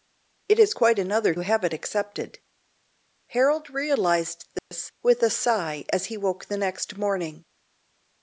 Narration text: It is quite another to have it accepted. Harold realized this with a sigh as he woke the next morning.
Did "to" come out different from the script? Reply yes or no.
yes